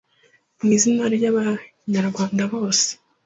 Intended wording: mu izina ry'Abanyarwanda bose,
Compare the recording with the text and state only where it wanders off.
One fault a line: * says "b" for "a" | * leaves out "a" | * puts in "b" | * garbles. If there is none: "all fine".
all fine